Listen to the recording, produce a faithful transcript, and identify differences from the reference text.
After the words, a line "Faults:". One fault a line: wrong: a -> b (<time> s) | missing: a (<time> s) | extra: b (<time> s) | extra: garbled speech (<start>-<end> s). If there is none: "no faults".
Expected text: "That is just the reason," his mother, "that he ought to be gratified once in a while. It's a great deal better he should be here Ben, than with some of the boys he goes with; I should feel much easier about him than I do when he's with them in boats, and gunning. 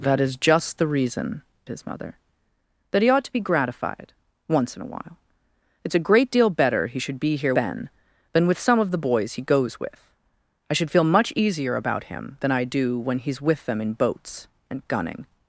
"That is just the reason," his mother, "that he ought to be gratified once in a while. It's a great deal better he should be here Ben, than with some of the boys he goes with; I should feel much easier about him than I do when he's with them in boats, and gunning.
Faults:
no faults